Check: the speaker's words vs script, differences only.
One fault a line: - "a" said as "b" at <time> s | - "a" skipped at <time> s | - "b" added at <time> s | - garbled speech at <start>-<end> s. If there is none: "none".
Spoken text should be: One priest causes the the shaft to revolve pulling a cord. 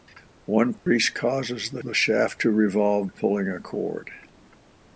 none